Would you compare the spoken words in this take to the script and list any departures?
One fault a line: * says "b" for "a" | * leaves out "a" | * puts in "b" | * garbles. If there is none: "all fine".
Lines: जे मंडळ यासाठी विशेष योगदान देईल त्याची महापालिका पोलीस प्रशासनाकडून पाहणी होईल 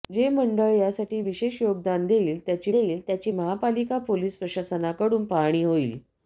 * puts in "देईल त्याची"